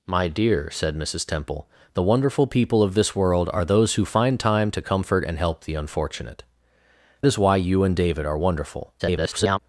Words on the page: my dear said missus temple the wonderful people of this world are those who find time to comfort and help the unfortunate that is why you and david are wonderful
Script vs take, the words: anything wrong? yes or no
yes